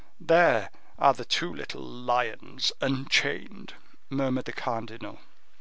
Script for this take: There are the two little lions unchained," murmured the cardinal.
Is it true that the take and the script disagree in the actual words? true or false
false